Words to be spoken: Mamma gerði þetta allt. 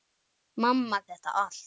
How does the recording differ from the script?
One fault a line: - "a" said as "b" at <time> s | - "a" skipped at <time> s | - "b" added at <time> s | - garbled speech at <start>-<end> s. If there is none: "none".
- "gerði" skipped at 1.0 s